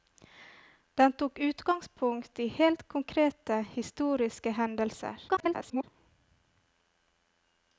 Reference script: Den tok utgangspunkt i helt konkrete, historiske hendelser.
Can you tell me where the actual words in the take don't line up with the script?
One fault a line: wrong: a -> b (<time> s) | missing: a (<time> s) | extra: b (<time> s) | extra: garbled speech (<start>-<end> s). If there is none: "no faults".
extra: garbled speech (5.3-5.8 s)